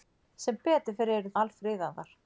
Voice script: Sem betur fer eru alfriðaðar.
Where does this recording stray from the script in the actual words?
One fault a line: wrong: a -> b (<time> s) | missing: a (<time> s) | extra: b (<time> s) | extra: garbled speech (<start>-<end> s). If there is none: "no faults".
no faults